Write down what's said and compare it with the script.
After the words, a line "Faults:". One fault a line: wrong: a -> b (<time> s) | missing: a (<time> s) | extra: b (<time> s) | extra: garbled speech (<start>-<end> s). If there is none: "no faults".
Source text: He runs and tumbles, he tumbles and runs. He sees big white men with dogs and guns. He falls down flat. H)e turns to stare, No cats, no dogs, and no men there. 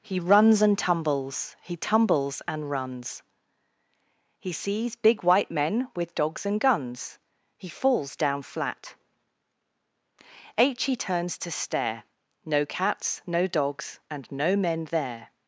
He runs and tumbles, he tumbles and runs. He sees big white men with dogs and guns. He falls down flat. h H)e turns to stare, No cats, no dogs, and no men there.
Faults:
extra: h (10.6 s)